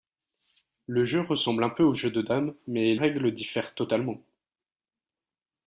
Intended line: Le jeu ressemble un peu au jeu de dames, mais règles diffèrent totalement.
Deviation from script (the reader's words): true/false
false